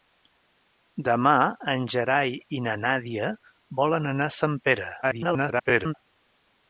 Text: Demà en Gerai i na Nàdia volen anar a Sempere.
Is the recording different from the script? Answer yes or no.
yes